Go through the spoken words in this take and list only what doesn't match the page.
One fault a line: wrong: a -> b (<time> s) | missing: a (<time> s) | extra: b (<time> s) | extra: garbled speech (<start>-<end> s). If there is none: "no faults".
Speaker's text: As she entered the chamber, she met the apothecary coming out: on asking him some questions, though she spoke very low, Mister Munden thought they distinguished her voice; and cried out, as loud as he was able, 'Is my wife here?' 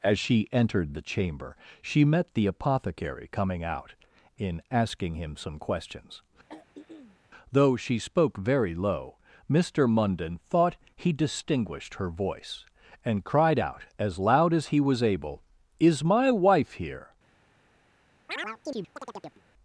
wrong: on -> in (4.3 s)
wrong: they -> he (11.0 s)